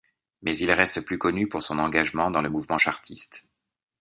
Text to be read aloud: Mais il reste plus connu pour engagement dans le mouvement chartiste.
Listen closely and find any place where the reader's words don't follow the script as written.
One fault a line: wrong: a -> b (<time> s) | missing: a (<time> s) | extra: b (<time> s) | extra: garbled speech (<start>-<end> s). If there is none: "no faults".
extra: son (1.6 s)